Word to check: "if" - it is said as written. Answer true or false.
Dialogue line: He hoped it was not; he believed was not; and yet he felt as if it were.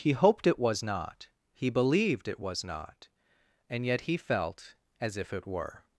true